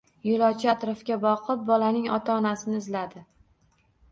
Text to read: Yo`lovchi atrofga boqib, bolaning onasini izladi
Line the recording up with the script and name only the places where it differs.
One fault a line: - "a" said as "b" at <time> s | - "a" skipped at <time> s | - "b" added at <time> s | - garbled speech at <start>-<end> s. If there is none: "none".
- "ota" added at 2.2 s